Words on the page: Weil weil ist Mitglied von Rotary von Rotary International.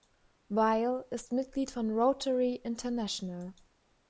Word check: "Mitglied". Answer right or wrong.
right